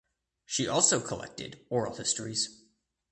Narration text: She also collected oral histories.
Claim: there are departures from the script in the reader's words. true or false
false